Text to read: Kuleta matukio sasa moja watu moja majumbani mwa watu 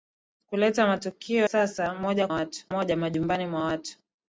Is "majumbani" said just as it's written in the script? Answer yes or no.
yes